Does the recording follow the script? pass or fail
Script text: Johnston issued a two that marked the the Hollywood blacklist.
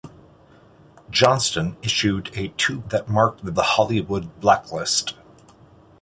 pass